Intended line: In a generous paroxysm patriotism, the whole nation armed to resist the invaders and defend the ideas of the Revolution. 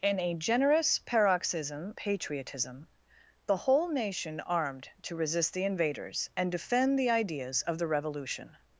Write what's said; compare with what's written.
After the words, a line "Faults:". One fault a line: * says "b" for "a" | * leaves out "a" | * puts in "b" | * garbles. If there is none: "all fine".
In a generous paroxysm patriotism, the whole nation armed to resist the invaders and defend the ideas of the Revolution.
Faults:
all fine